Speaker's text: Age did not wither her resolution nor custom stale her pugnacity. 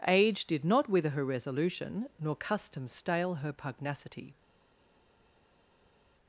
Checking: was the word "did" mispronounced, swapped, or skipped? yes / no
no